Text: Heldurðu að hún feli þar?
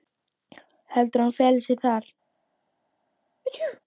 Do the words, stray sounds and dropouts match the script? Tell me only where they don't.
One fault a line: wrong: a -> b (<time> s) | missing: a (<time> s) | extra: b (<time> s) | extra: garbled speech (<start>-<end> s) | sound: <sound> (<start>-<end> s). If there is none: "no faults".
extra: sig (1.7 s)
sound: sneeze (3.4-3.8 s)